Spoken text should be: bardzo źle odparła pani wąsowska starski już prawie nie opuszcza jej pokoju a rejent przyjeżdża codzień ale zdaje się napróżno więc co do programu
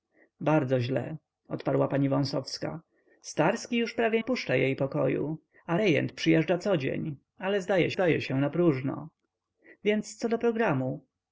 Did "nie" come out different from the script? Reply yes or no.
yes